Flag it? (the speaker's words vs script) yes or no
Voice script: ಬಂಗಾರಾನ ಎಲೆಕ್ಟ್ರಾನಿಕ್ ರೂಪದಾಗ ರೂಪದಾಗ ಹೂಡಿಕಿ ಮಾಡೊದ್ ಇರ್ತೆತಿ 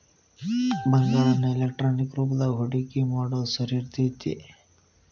yes